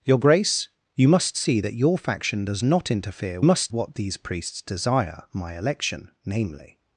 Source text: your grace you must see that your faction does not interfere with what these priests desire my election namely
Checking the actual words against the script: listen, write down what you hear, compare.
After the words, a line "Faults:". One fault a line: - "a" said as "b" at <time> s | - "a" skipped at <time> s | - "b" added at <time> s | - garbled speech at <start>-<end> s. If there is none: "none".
your grace you must see that your faction does not interfere must what these priests desire my election namely
Faults:
- "with" said as "must" at 3.4 s